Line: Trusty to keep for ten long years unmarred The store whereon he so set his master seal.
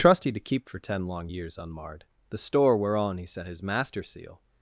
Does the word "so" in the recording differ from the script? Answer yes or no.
yes